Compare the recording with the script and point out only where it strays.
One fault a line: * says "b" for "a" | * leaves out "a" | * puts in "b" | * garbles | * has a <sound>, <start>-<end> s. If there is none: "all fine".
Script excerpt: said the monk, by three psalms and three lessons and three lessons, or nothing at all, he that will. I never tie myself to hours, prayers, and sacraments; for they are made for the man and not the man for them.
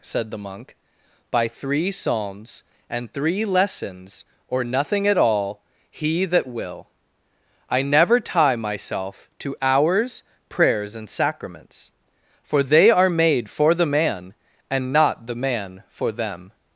* leaves out "and three lessons"